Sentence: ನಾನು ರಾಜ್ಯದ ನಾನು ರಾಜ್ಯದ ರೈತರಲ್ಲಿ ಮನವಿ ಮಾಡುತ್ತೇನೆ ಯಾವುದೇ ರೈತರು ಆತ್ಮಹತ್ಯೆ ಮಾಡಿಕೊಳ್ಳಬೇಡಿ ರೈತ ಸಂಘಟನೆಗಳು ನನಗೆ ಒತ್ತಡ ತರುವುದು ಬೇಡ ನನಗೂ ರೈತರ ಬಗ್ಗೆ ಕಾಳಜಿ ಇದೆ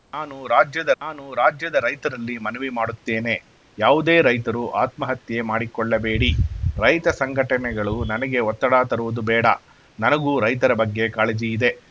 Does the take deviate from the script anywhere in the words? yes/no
no